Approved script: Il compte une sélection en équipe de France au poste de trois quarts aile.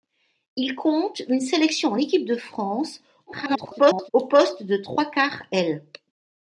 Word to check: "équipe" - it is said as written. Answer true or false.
true